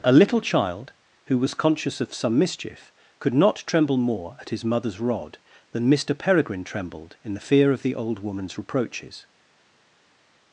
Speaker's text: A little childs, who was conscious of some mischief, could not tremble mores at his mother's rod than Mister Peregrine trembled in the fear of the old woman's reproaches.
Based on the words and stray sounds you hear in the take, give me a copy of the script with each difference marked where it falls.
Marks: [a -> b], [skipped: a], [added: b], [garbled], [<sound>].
A little [childs, -> child] who was conscious of some mischief, could not tremble [mores -> more] at his mother's rod than Mister Peregrine trembled in the fear of the old woman's reproaches.